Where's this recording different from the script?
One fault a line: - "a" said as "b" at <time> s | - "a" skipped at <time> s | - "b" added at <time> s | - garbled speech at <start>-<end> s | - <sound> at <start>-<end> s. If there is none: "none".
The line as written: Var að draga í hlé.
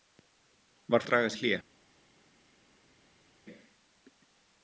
none